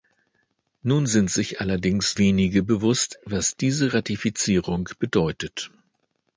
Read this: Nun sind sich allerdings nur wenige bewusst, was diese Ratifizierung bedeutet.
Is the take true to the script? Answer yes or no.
no